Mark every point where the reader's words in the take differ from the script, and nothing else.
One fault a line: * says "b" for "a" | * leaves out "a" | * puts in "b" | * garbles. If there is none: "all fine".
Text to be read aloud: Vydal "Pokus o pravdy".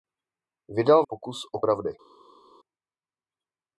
all fine